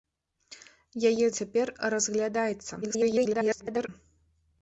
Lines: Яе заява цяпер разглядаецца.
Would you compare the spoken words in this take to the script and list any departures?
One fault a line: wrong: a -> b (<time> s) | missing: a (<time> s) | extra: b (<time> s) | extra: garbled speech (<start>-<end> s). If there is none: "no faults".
missing: заява (1.3 s)
extra: garbled speech (2.8-3.9 s)